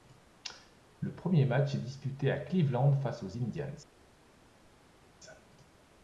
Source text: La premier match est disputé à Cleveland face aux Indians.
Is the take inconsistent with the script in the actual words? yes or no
yes